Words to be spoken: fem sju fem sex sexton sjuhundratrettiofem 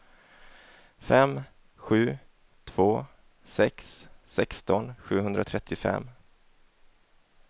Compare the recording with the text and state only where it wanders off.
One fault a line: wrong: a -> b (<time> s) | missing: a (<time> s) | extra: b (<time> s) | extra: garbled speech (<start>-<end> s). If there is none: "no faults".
wrong: fem -> två (2.6 s)